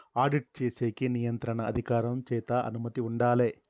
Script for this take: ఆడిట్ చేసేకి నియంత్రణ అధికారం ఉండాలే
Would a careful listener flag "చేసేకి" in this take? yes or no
no